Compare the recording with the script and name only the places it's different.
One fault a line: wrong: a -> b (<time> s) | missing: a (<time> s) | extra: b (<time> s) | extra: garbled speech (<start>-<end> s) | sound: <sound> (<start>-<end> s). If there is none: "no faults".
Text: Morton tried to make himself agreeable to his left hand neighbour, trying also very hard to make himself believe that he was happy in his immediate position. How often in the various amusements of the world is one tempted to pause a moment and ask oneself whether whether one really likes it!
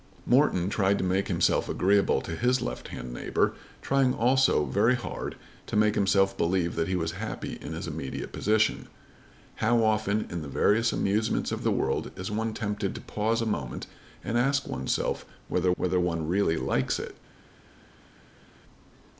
no faults